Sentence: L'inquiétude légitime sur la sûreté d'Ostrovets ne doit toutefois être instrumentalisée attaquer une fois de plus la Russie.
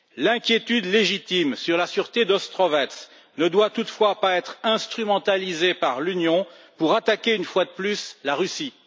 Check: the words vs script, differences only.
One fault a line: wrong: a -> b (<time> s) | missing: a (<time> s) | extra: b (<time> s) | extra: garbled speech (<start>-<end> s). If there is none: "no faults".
extra: pas (4.2 s)
extra: par l'Union pour (5.8 s)